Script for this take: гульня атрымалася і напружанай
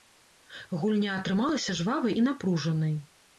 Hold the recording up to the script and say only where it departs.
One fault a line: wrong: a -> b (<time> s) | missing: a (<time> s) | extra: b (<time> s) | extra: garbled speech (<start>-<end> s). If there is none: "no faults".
extra: жвавай (1.8 s)